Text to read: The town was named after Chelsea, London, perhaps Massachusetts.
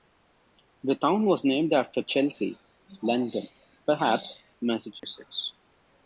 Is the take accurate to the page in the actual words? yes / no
yes